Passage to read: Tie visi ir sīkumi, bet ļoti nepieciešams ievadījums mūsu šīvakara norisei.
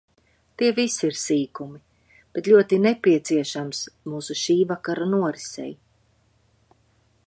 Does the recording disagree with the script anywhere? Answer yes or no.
yes